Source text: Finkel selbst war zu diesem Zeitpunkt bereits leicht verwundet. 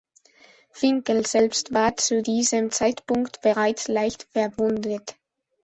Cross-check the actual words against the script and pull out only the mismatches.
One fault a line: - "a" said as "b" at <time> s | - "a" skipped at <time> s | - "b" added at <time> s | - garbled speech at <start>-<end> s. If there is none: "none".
none